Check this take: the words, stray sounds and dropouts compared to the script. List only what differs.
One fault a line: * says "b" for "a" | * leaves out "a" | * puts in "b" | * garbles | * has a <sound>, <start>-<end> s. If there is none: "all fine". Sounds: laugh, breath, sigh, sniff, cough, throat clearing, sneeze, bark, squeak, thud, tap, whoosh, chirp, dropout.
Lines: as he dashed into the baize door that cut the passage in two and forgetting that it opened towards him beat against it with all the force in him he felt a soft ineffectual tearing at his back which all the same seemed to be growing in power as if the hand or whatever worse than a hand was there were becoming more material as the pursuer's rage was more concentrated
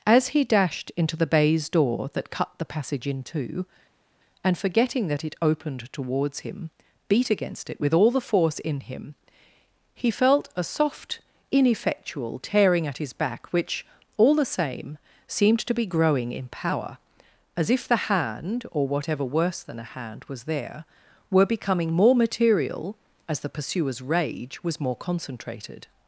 all fine